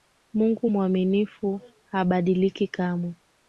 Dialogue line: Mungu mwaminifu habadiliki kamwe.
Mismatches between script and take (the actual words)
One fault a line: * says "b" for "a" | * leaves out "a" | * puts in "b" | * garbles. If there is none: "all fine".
all fine